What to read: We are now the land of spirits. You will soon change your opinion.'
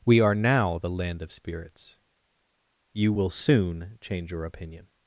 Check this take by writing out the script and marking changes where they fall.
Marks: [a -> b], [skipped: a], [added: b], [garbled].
We are now the land of spirits. You will soon change your opinion.'